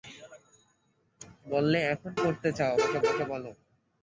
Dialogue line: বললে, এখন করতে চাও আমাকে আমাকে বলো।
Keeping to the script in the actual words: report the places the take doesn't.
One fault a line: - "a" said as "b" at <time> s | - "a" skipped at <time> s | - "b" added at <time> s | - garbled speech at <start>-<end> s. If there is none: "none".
none